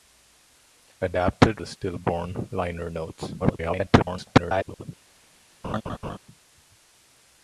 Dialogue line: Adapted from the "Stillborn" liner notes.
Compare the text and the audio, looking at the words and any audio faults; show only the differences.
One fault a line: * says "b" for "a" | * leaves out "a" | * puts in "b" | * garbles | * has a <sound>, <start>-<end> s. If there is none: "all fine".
* leaves out "from"
* garbles
* has a laugh, 5.6-6.2 s